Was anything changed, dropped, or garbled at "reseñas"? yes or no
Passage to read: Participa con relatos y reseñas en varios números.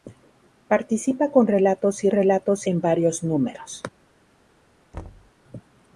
yes